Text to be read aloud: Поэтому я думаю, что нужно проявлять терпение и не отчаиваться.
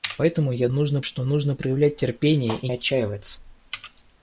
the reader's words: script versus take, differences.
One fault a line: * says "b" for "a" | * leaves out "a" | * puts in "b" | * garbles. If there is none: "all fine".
* says "нужно" for "думаю"
* leaves out "не"